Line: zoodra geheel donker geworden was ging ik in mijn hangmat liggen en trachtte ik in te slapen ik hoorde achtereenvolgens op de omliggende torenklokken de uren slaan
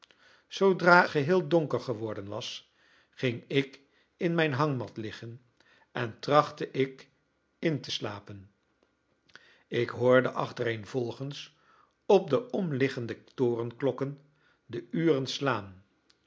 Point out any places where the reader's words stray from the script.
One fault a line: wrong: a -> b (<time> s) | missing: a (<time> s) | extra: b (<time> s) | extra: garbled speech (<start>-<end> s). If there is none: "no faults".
no faults